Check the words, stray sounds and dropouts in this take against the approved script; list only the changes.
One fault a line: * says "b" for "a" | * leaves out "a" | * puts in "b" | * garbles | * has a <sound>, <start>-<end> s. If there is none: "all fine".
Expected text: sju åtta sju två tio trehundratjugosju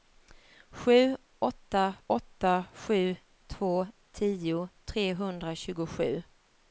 * puts in "åtta"